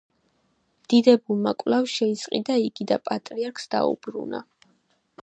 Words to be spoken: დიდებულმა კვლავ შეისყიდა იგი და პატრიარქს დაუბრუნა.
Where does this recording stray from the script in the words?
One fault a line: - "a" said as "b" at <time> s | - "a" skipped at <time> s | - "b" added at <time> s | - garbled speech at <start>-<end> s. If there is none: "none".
none